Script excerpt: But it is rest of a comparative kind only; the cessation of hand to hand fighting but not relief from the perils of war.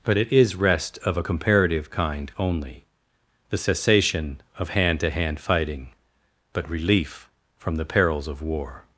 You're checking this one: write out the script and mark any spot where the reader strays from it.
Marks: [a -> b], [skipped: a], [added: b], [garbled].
But it is rest of a comparative kind only; the cessation of hand to hand fighting but [skipped: not] relief from the perils of war.